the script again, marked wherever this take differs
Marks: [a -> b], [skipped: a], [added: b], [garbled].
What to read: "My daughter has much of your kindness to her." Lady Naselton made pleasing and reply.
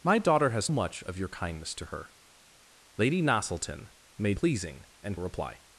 "My daughter has much of your kindness to her." Lady Naselton made pleasing and reply.